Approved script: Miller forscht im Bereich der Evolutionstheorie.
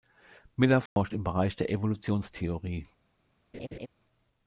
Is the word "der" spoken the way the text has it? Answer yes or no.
yes